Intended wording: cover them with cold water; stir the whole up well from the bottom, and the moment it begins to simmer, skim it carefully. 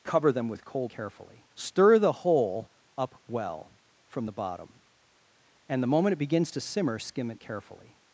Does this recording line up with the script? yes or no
no